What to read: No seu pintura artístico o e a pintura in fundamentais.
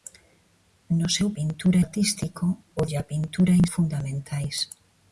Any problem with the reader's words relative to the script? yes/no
no